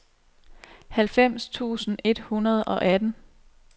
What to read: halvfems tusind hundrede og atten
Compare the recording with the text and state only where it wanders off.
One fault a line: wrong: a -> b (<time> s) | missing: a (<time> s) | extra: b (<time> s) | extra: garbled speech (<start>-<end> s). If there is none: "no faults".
extra: et (2.0 s)